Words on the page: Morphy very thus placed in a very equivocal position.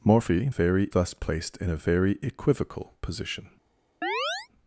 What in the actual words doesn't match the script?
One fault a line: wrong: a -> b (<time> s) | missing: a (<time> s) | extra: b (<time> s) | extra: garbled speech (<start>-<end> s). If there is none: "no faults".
no faults